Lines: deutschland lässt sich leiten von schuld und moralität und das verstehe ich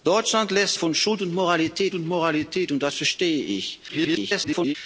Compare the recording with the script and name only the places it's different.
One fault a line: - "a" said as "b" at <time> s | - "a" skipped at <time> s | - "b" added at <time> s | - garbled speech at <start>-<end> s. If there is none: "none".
- "sich leiten von schuld" said as "von schuld und moralität" at 0.7 s
- garbled speech at 3.9-4.7 s